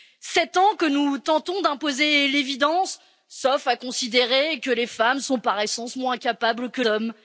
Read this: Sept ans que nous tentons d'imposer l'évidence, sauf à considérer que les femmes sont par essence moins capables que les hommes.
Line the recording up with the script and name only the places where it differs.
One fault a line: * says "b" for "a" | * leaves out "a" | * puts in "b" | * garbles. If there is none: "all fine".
* leaves out "les"